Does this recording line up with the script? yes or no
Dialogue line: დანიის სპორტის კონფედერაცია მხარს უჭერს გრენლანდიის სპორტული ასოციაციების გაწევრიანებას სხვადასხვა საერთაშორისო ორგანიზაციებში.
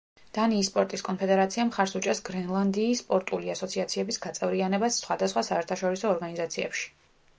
yes